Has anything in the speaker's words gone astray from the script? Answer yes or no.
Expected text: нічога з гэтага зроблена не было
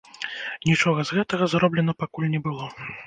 yes